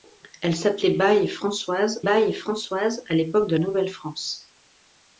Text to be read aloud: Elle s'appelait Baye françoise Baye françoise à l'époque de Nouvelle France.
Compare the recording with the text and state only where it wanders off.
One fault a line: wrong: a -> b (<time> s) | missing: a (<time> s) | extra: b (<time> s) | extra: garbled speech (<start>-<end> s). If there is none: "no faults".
no faults